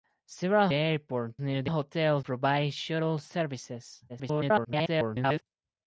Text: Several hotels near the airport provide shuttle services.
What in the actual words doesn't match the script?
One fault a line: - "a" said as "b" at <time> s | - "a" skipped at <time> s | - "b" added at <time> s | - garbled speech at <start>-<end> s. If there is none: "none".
- "hotels" said as "airport" at 0.7 s
- "airport" said as "hotels" at 1.7 s
- garbled speech at 4.1-5.4 s